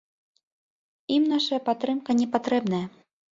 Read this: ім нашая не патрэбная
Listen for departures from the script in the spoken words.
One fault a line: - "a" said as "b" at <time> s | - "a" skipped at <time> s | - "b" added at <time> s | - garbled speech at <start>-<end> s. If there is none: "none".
- "падтрымка" added at 1.7 s